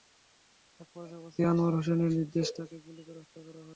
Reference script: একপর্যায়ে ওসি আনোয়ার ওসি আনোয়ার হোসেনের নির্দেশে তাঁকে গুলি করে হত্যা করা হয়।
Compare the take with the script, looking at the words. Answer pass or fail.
fail